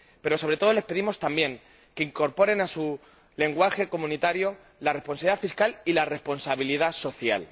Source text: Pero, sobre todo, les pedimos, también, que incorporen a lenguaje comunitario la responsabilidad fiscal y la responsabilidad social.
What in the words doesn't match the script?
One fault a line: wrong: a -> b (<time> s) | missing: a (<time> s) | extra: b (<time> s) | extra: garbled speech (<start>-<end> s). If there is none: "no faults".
extra: su (2.7 s)